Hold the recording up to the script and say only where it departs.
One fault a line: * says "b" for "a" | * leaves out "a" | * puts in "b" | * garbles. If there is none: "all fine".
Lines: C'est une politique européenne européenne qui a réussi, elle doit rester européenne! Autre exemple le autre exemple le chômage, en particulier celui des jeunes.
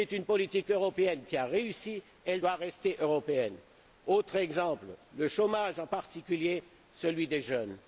* leaves out "européenne"
* leaves out "autre exemple le"